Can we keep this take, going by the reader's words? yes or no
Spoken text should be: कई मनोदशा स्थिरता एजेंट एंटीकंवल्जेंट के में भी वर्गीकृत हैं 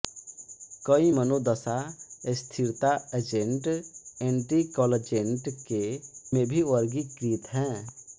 yes